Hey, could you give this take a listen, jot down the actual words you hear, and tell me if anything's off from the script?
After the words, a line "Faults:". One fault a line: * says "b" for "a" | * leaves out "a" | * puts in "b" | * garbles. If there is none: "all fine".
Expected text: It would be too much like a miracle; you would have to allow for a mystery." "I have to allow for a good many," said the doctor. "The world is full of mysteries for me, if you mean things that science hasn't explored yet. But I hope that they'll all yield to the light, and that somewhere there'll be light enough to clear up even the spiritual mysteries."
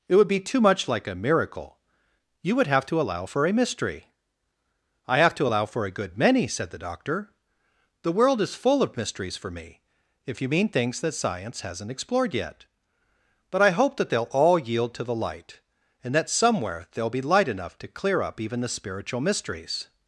It would be too much like a miracle; you would have to allow for a mystery." "I have to allow for a good many," said the doctor. "The world is full of mysteries for me, if you mean things that science hasn't explored yet. But I hope that they'll all yield to the light, and that somewhere there'll be light enough to clear up even the spiritual mysteries."
Faults:
all fine